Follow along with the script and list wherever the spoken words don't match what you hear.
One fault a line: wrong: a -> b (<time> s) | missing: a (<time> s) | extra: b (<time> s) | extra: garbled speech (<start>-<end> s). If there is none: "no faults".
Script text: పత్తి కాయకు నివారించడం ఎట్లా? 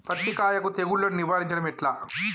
extra: తెగుళ్లను (0.7 s)